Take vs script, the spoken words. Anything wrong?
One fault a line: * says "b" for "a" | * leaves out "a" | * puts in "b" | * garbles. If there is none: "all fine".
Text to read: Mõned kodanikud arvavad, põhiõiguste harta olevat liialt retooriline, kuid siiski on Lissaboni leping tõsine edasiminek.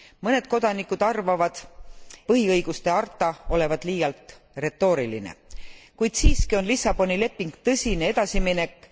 all fine